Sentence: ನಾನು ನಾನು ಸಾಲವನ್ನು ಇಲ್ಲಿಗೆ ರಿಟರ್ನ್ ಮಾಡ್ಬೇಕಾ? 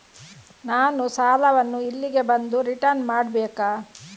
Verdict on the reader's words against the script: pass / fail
fail